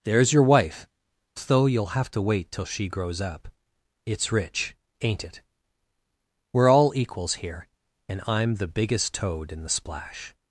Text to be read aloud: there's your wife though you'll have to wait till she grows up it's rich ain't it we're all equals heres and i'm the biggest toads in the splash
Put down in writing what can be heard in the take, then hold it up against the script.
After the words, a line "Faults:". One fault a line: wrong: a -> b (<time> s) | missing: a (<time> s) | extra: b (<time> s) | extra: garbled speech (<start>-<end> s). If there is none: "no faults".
there's your wife though you'll have to wait till she grows up it's rich ain't it we're all equals here and i'm the biggest toad in the splash
Faults:
wrong: heres -> here (7.3 s)
wrong: toads -> toad (9.1 s)